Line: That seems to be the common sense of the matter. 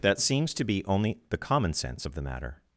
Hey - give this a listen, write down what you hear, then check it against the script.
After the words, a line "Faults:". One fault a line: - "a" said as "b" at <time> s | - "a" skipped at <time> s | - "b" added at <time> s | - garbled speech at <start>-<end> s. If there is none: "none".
That seems to be only the common sense of the matter.
Faults:
- "only" added at 0.8 s